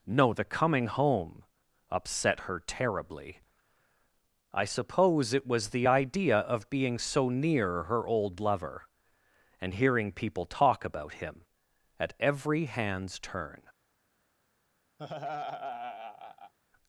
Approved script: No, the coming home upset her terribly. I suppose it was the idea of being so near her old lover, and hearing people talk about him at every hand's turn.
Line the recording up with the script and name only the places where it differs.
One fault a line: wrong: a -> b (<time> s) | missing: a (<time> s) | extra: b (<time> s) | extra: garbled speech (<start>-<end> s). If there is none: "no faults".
no faults